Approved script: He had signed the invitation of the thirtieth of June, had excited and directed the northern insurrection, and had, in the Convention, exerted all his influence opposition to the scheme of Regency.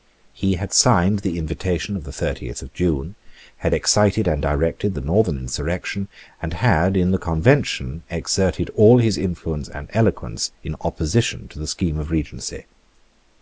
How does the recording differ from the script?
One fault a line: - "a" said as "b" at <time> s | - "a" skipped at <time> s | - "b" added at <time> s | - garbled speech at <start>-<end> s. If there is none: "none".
- "and eloquence in" added at 9.7 s